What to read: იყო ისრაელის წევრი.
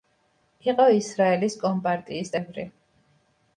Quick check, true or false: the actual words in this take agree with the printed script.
false